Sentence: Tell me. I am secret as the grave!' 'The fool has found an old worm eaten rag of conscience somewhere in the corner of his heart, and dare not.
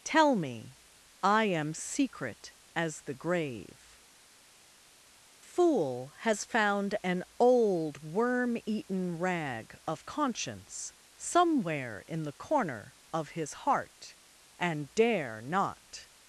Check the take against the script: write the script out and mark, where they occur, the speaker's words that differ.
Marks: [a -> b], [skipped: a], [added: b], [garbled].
Tell me. I am secret as the grave!' [skipped: 'The] fool has found an old worm eaten rag of conscience somewhere in the corner of his heart, and dare not.